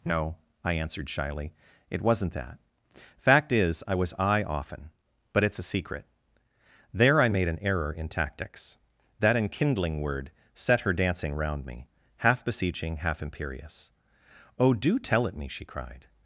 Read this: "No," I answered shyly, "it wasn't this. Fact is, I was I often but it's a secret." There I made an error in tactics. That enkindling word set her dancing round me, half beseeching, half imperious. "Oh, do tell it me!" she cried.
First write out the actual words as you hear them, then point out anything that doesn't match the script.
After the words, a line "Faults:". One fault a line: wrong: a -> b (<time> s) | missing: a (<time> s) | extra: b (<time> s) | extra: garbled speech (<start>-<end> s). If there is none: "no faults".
"No," I answered shyly, "it wasn't that. Fact is, I was I often but it's a secret." There I made an error in tactics. That enkindling word set her dancing round me, half beseeching, half imperious. "Oh, do tell it me!" she cried.
Faults:
wrong: this -> that (2.3 s)